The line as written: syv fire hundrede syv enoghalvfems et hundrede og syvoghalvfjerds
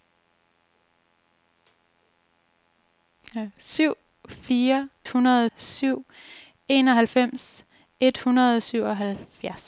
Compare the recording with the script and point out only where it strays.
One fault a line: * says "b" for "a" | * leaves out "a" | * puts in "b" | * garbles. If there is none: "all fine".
all fine